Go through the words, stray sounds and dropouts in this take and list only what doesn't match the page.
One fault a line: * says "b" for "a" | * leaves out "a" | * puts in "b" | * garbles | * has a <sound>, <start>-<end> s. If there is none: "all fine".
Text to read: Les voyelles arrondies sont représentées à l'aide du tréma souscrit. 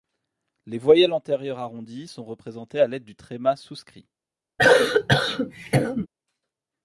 * puts in "antérieures"
* has a cough, 4.6-6.1 s